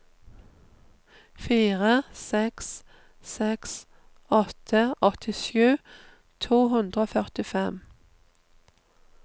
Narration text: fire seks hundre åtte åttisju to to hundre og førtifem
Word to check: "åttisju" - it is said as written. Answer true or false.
true